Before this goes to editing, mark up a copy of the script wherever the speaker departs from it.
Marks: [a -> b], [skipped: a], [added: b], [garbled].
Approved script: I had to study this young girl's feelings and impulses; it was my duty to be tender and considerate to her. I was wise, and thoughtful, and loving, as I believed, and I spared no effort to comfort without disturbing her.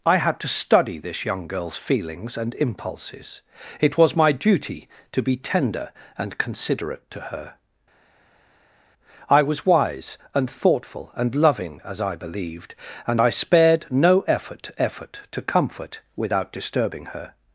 I had to study this young girl's feelings and impulses; it was my duty to be tender and considerate to her. I was wise, and thoughtful, and loving, as I believed, and I spared no effort [added: effort] to comfort without disturbing her.